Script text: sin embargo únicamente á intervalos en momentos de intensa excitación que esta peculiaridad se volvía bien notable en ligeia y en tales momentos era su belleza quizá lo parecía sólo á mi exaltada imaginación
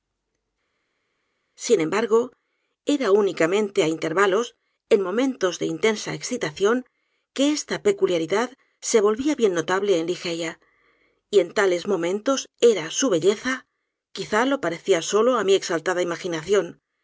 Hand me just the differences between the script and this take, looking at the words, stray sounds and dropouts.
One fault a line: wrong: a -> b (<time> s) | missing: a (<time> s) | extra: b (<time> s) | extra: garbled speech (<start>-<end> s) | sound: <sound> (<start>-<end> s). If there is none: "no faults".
extra: era (2.9 s)